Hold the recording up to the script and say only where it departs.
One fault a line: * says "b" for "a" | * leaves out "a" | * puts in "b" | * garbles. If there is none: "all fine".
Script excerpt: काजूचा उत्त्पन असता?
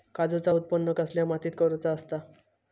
* puts in "कसल्या मातीत करुचा"